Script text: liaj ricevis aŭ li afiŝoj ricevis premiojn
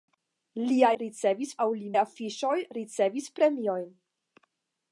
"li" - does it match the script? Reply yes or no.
yes